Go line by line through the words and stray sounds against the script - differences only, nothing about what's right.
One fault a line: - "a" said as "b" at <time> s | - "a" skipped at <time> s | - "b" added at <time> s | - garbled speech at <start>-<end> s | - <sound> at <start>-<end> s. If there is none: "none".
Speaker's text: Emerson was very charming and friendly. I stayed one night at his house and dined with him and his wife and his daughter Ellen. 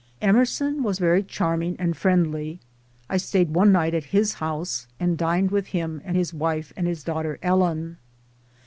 none